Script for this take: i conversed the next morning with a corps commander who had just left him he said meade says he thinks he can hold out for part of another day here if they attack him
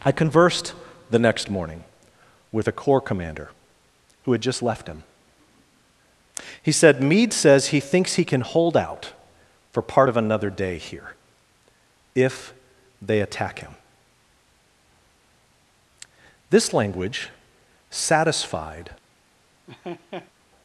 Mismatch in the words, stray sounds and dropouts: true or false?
true